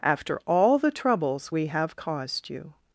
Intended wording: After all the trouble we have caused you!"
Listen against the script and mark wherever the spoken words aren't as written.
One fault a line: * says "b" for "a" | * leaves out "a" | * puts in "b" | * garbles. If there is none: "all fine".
* says "troubles" for "trouble"